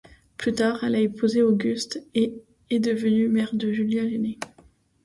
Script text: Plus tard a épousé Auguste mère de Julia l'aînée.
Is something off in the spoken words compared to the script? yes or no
yes